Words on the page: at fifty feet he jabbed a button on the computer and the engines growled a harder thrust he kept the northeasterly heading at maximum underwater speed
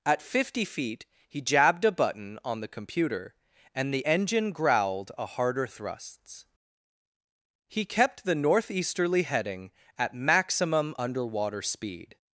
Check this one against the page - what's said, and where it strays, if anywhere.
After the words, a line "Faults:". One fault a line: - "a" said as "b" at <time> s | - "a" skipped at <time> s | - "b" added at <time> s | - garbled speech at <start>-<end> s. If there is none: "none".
at fifty feet he jabbed a button on the computer and the engine growled a harder thrusts he kept the northeasterly heading at maximum underwater speed
Faults:
- "engines" said as "engine" at 4.0 s
- "thrust" said as "thrusts" at 5.7 s